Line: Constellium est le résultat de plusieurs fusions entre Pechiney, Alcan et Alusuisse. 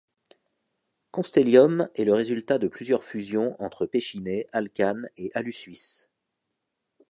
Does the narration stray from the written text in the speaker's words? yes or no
no